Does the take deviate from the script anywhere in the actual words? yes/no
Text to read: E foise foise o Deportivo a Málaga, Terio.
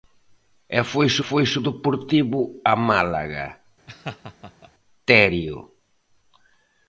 no